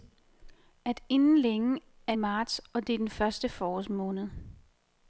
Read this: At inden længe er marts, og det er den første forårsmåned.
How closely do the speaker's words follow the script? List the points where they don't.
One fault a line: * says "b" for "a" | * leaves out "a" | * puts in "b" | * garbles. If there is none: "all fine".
all fine